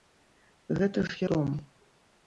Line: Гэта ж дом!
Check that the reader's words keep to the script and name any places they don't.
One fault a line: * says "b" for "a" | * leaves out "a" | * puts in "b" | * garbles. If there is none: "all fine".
all fine